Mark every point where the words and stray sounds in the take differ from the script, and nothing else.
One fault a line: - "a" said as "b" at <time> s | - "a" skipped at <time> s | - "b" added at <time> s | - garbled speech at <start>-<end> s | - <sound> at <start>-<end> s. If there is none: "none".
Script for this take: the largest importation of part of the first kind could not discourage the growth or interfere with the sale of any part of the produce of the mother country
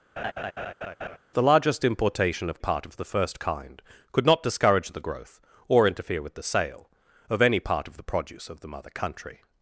- laugh at 0.2-1.2 s